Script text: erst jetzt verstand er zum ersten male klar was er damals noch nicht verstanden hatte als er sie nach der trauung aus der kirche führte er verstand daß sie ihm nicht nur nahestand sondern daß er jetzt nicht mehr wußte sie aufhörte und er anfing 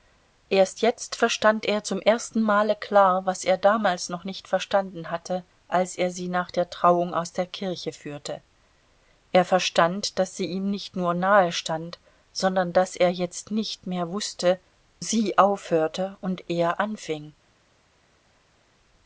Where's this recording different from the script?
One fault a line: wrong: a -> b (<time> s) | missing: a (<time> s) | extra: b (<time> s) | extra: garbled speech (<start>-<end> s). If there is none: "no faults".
no faults